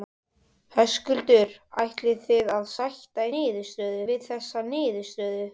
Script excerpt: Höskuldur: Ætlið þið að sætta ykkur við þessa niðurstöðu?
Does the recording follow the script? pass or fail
fail